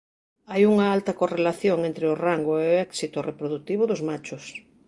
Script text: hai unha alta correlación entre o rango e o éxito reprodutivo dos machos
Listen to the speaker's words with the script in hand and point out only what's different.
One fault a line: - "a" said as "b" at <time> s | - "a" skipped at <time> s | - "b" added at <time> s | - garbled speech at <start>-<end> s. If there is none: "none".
none